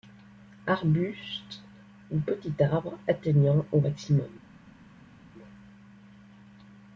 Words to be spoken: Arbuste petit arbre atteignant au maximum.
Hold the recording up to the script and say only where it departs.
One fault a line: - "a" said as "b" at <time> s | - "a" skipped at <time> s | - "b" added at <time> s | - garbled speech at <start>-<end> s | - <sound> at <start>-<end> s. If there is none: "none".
- "ou" added at 2.1 s